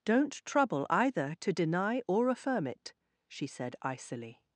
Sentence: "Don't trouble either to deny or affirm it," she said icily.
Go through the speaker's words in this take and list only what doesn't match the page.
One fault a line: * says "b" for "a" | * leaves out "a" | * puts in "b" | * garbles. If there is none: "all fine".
all fine